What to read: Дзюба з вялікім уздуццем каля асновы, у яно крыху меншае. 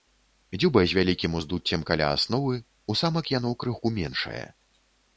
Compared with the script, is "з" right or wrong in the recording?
right